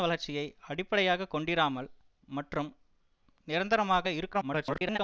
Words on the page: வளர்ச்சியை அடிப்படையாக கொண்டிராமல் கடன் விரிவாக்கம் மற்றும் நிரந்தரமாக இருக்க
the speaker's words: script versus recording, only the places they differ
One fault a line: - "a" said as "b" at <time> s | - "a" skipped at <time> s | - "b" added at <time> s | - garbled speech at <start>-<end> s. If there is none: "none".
- "கடன் விரிவாக்கம்" skipped at 1.9 s
- garbled speech at 4.3-5.0 s